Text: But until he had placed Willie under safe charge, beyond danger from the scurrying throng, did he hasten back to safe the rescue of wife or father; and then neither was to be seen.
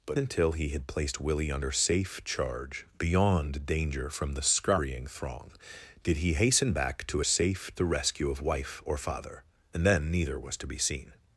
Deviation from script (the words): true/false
false